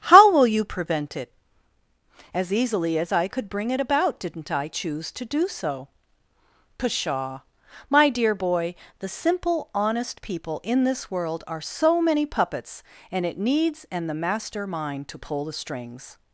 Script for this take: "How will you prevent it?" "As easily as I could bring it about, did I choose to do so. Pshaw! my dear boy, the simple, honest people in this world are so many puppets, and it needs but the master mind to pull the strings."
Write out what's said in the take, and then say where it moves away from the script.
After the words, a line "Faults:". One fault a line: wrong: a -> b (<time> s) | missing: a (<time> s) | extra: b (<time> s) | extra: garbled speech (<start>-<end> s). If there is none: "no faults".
"How will you prevent it?" "As easily as I could bring it about, didn't I choose to do so. Pshaw! my dear boy, the simple, honest people in this world are so many puppets, and it needs and the master mind to pull the strings."
Faults:
wrong: did -> didn't (4.2 s)
wrong: but -> and (13.9 s)